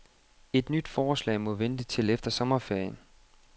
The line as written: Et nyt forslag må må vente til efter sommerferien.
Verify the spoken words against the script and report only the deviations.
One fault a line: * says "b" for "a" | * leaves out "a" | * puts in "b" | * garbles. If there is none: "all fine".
* leaves out "må"